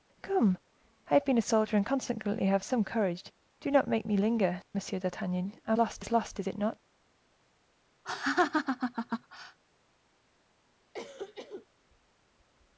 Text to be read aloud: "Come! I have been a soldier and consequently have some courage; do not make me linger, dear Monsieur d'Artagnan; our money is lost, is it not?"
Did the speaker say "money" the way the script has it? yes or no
no